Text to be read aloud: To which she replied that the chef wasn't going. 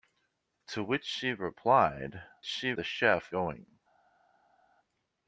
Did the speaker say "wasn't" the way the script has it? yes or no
no